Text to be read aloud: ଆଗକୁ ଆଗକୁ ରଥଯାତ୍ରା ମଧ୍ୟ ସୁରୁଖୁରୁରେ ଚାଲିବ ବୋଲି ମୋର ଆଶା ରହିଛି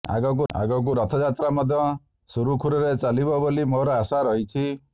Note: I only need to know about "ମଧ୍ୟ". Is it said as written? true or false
true